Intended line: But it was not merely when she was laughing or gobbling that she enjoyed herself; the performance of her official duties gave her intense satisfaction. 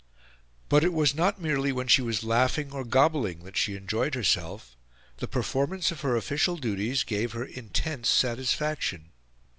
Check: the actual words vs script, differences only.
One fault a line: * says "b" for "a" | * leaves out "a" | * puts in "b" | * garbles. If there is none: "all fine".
all fine